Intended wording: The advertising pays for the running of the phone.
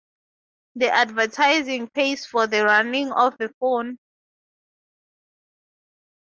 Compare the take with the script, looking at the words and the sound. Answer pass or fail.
pass